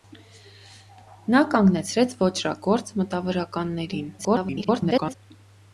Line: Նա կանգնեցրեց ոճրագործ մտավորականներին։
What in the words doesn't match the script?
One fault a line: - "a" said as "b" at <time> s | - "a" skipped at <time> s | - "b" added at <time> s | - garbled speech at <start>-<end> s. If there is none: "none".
- garbled speech at 4.2-5.2 s